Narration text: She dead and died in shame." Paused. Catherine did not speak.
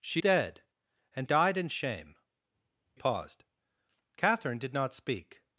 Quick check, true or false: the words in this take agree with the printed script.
true